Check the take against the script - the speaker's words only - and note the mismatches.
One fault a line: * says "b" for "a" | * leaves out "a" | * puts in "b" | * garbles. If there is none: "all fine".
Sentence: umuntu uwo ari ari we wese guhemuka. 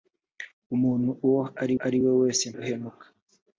all fine